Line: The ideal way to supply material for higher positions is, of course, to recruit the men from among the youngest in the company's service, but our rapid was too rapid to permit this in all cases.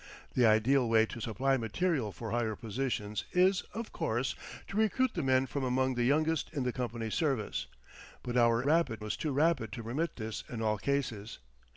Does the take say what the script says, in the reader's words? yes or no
yes